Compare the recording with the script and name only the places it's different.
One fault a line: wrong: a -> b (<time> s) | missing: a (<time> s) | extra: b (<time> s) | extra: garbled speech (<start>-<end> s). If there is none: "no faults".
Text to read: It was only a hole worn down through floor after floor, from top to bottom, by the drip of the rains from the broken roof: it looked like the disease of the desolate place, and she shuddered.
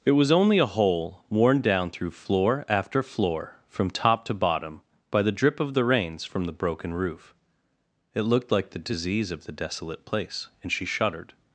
no faults